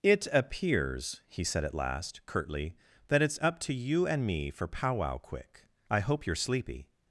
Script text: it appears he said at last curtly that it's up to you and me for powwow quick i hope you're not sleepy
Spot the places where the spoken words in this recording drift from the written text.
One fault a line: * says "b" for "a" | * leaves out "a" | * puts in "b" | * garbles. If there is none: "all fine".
* leaves out "not"